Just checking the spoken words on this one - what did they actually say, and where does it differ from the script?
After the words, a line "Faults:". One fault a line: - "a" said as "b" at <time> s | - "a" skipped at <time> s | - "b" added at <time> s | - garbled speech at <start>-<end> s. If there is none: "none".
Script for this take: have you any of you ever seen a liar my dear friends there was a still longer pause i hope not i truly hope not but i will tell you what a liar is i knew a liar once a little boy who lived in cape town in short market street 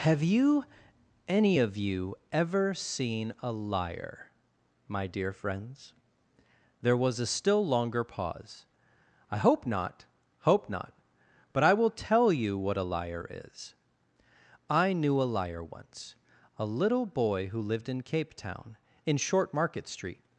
have you any of you ever seen a liar my dear friends there was a still longer pause i hope not hope not but i will tell you what a liar is i knew a liar once a little boy who lived in cape town in short market street
Faults:
- "i truly" skipped at 10.1 s